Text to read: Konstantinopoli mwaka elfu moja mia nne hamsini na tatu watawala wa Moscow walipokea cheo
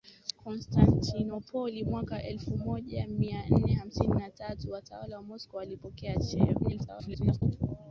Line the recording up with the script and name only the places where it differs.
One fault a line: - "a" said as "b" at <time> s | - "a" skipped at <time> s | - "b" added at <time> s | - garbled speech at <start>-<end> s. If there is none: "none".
- garbled speech at 6.6-7.4 s